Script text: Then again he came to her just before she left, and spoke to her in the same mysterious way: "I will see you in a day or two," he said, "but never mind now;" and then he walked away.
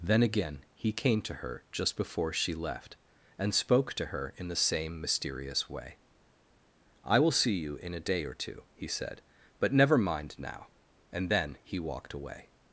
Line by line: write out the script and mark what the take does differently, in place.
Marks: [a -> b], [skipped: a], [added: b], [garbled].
Then again he came to her just before she left, and spoke to her in the same mysterious way: "I will see you in a day or two," he said, "but never mind now;" and then he walked away.